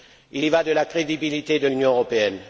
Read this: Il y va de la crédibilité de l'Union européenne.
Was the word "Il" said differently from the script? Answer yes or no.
no